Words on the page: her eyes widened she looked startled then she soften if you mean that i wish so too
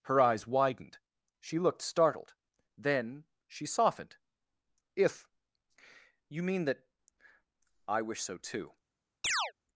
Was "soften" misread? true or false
true